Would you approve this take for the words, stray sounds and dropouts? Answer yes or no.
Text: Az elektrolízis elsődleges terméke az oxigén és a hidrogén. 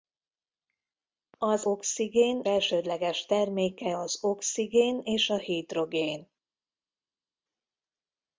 no